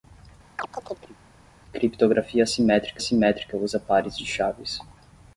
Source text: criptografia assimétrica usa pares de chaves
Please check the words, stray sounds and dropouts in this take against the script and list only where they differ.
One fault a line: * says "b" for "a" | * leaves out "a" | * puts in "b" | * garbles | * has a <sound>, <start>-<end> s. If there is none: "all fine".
* has a chirp, 0.6-1.2 s
* puts in "assimétrica"